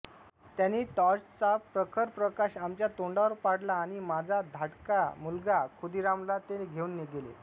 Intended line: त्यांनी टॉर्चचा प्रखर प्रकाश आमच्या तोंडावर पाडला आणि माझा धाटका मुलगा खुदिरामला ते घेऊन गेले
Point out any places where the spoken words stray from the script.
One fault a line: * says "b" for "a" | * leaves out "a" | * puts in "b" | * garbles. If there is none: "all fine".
all fine